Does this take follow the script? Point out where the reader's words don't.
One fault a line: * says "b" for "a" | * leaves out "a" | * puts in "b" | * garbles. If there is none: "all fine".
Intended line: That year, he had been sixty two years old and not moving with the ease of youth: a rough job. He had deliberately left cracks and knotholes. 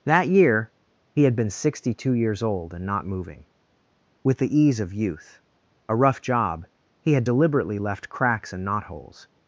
all fine